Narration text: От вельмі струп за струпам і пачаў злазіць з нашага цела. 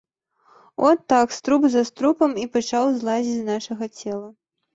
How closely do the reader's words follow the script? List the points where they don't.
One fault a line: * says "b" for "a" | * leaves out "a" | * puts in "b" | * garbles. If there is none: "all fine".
* says "так" for "вельмі"